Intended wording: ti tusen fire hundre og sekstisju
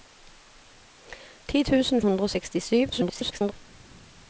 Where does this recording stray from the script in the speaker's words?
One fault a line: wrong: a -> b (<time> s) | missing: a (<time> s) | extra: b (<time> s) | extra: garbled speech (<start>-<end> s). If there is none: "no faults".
missing: fire (2.0 s)
extra: garbled speech (2.9-3.5 s)